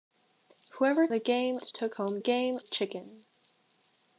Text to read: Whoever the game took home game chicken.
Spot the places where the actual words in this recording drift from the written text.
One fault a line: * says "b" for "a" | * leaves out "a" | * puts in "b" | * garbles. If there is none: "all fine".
all fine